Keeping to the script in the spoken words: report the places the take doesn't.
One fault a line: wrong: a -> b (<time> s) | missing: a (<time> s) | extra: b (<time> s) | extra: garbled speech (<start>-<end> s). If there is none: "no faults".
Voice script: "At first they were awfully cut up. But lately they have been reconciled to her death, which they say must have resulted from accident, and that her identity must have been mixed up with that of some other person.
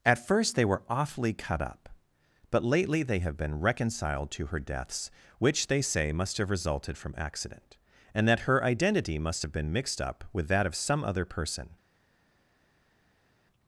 wrong: death -> deaths (4.6 s)